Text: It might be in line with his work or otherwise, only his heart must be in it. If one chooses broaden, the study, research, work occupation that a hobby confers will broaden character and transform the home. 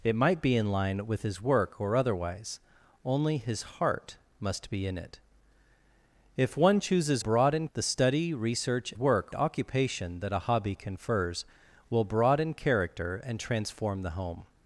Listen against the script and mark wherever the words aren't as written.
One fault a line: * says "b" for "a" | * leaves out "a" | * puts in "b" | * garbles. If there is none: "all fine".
all fine